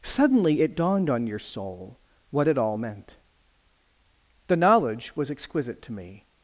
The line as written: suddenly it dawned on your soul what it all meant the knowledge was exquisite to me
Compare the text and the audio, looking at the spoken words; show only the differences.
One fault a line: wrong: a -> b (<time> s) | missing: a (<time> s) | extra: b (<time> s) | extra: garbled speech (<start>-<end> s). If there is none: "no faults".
no faults